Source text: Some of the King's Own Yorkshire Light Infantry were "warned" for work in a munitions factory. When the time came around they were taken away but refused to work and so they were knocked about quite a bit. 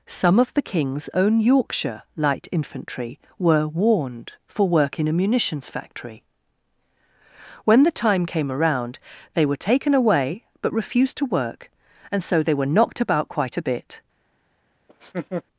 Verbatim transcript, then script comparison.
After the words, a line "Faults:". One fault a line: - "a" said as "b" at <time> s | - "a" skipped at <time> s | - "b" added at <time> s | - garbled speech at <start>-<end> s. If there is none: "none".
Some of the King's Own Yorkshire Light Infantry were "warned" for work in a munitions factory. When the time came around they were taken away but refused to work and so they were knocked about quite a bit.
Faults:
none